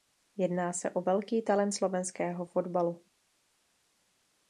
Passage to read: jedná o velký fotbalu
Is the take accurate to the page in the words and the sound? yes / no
no